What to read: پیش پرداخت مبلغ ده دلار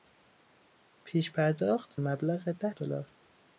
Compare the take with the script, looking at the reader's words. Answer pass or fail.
pass